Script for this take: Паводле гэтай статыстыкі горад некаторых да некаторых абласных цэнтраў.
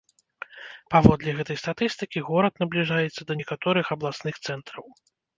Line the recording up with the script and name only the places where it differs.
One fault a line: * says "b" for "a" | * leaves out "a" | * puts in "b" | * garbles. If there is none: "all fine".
* says "набліжаецца" for "некаторых"